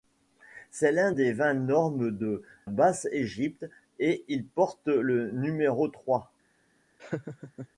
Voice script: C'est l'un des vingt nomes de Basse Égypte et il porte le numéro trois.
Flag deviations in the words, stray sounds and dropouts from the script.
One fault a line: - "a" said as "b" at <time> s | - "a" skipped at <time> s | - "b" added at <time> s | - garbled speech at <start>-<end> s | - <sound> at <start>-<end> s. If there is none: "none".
- laugh at 7.0-7.7 s